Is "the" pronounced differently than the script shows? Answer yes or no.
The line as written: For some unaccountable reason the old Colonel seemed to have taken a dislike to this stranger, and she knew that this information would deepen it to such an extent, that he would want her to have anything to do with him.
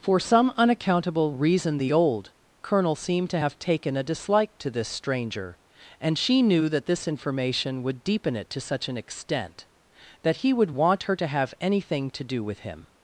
no